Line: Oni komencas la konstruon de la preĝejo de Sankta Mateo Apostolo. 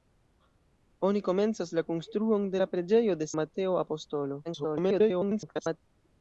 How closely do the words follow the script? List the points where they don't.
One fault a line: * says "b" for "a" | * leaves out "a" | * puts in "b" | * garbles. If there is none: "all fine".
* leaves out "Sankta"
* garbles